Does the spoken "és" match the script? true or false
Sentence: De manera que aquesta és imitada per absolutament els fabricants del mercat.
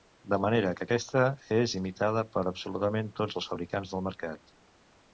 true